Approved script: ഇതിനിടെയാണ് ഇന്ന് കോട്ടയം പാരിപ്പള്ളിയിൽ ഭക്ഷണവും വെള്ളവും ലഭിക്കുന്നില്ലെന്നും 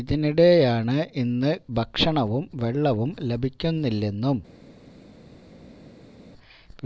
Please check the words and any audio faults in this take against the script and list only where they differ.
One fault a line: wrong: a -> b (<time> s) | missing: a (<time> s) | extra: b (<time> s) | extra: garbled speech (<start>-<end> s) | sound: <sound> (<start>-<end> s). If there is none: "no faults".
missing: കോട്ടയം പാരിപ്പള്ളിയിൽ (1.5 s)